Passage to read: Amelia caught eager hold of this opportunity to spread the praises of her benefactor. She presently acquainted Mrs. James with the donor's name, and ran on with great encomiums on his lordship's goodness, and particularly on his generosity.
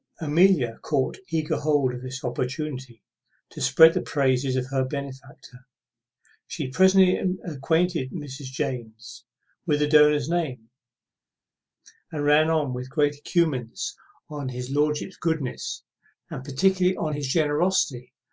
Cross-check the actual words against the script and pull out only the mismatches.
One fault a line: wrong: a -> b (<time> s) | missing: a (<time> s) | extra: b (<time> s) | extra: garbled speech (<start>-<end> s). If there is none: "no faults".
no faults